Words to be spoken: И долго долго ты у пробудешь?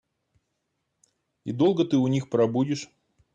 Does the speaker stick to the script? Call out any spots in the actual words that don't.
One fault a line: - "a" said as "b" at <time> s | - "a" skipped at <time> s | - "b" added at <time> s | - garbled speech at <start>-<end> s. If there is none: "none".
- "долго" skipped at 1.9 s
- "них" added at 2.1 s